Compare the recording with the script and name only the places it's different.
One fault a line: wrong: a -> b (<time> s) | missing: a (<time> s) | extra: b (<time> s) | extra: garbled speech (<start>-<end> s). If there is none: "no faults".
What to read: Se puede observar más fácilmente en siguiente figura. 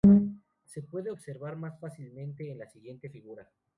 extra: la (2.6 s)